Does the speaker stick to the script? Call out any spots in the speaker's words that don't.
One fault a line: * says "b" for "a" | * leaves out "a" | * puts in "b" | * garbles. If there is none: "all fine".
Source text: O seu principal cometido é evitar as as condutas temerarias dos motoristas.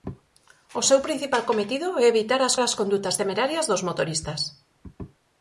all fine